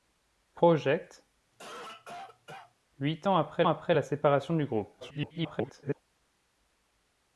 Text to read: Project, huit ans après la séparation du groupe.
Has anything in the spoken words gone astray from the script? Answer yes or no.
yes